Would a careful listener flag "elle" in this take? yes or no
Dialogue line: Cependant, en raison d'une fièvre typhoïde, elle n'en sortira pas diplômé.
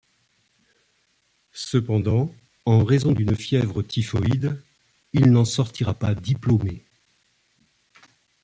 yes